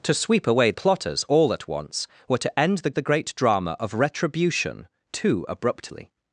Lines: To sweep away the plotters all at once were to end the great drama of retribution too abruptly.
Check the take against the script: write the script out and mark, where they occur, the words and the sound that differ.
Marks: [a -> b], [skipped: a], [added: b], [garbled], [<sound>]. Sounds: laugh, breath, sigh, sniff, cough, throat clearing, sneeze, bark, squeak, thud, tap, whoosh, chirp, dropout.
To sweep away [skipped: the] plotters all at once were to end the [added: the] great drama of retribution too abruptly.